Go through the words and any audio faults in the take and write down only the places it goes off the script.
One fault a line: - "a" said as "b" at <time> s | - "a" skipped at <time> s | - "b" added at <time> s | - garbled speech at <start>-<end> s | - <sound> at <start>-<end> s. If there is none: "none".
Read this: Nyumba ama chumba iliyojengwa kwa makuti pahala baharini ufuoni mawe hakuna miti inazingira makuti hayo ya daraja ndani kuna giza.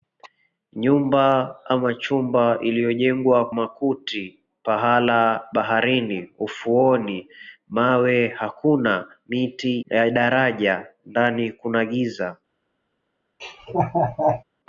- "kwa" skipped at 3.5 s
- "inazingira makuti hayo" skipped at 9.8 s
- laugh at 13.4-14.4 s